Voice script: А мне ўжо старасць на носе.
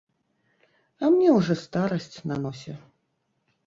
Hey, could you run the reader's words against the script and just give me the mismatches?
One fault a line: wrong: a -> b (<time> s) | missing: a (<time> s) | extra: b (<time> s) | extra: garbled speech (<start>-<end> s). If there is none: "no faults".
no faults